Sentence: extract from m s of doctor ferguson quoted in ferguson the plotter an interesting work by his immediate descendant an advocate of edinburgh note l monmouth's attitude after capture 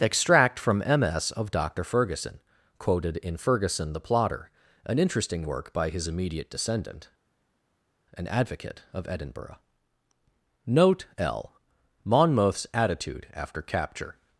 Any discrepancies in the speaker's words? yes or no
no